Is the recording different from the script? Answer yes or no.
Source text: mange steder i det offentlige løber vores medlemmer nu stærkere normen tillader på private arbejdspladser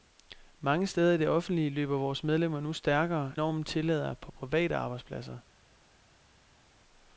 no